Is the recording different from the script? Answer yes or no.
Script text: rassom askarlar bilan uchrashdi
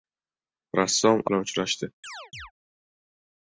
yes